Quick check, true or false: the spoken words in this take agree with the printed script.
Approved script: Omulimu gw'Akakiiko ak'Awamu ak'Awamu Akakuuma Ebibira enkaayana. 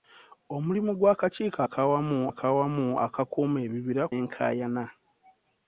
true